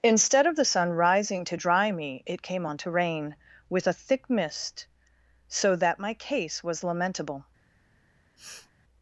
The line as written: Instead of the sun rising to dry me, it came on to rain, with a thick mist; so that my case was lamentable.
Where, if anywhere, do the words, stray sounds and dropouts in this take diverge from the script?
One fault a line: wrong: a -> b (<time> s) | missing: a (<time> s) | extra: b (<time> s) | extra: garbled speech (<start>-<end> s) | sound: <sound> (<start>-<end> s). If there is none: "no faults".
sound: sniff (8.4-8.7 s)